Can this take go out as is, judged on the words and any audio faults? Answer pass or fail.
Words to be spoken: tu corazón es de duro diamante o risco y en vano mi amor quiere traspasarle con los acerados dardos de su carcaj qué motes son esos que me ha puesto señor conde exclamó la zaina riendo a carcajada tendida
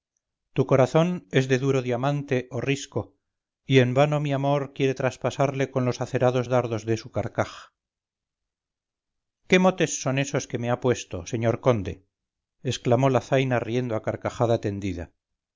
pass